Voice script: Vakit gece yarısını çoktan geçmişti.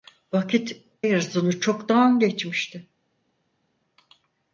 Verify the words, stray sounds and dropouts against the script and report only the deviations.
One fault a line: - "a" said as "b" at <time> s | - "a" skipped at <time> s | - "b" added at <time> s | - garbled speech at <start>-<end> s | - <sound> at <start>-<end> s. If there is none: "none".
- "gece" skipped at 0.8 s